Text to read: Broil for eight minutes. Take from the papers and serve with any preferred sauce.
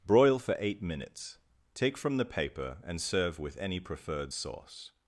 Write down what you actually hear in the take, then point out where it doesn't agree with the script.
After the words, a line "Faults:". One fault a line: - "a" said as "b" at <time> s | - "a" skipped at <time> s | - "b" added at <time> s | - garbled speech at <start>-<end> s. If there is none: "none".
Broil for eight minutes. Take from the paper and serve with any preferred sauce.
Faults:
- "papers" said as "paper" at 2.2 s